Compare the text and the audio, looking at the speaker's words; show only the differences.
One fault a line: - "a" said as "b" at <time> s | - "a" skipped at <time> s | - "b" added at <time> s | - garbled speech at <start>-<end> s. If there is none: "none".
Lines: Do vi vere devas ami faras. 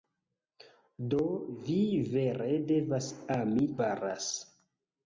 none